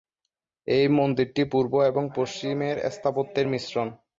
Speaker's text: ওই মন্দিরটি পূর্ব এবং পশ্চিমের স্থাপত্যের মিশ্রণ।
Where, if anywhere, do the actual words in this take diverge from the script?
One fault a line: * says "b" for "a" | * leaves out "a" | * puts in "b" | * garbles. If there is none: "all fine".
* says "এই" for "ওই"